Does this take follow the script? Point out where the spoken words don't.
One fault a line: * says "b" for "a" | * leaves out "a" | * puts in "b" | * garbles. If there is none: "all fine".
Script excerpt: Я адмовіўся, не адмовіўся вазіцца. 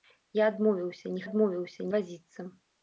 all fine